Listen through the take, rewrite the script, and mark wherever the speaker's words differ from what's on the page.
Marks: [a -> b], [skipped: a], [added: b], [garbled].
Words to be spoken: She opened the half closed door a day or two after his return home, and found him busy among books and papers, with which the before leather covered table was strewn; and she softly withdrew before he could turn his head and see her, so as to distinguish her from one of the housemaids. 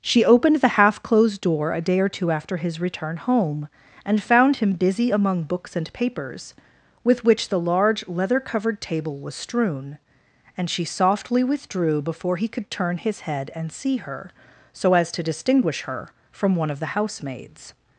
She opened the half closed door a day or two after his return home, and found him busy among books and papers, with which the [before -> large] leather covered table was strewn; and she softly withdrew before he could turn his head and see her, so as to distinguish her from one of the housemaids.